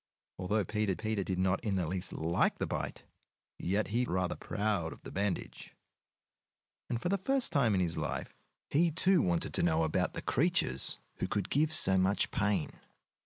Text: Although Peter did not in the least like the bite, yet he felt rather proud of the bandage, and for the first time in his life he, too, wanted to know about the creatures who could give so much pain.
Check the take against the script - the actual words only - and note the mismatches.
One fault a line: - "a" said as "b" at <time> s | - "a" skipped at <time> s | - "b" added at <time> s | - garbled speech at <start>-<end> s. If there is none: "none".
- "Peter" added at 0.9 s
- "felt" skipped at 4.0 s